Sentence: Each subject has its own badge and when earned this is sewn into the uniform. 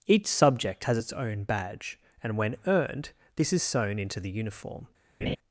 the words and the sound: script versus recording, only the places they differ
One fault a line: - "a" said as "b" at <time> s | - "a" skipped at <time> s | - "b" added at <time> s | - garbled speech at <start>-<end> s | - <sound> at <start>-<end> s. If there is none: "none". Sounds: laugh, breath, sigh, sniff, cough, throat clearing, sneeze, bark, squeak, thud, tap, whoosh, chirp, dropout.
- laugh at 5.2-5.4 s